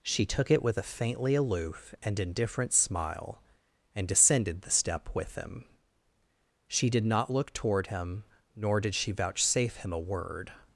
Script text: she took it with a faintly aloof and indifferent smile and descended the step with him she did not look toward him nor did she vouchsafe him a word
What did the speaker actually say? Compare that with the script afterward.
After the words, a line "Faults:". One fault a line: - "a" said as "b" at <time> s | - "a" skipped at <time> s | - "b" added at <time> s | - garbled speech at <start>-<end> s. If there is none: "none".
she took it with a faintly aloof and indifferent smile and descended the step with him she did not look toward him nor did she vouchsafe him a word
Faults:
none